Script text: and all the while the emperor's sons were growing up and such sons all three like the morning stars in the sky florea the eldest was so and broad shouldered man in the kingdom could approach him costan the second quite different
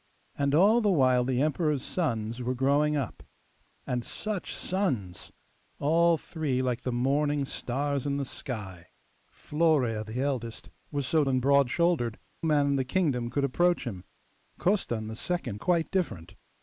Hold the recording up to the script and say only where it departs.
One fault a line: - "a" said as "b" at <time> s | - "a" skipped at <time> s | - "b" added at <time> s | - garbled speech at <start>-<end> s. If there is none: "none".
none